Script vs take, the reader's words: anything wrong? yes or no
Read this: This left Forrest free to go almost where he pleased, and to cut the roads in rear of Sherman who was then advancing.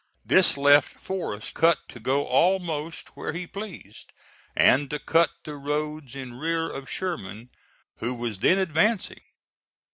yes